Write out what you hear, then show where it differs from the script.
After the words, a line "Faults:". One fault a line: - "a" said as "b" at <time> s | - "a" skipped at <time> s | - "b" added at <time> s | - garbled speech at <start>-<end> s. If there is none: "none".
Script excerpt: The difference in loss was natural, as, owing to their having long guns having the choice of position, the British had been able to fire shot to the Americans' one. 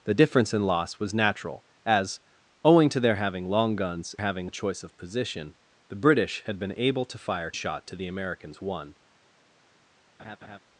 The difference in loss was natural, as, owing to their having long guns having the choice of position, the British had been able to fire shot to the Americans' one.
Faults:
none